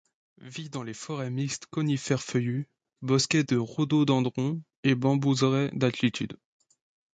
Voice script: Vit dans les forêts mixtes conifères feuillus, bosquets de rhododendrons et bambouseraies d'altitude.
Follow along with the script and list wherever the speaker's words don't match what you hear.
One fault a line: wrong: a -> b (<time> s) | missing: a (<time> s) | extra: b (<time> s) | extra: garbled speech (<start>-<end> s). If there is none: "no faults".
no faults